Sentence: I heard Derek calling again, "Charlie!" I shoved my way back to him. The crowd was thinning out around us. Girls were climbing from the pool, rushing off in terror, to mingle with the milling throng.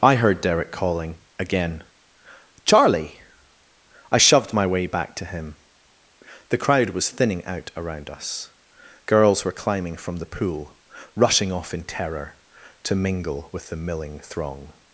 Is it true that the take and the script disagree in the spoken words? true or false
false